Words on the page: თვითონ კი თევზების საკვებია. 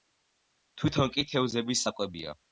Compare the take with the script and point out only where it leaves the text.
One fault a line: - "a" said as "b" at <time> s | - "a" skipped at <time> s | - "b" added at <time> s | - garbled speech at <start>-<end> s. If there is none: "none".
none